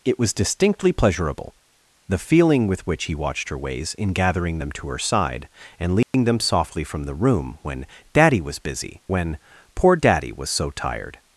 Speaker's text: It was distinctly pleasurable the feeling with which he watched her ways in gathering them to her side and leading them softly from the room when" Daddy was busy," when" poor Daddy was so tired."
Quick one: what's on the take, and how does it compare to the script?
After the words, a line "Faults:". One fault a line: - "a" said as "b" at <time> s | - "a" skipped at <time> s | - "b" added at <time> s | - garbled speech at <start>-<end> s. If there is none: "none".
It was distinctly pleasurable the feeling with which he watched her ways in gathering them to her side and leading them softly from the room when" Daddy was busy," when" poor Daddy was so tired."
Faults:
none